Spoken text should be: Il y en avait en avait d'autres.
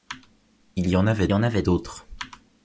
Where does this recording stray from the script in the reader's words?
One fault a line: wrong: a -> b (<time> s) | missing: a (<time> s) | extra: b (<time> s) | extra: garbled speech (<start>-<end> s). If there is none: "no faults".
no faults